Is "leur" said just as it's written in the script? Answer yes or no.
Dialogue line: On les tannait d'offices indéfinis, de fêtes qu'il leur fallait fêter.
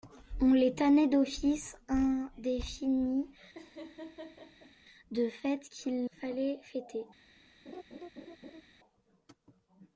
no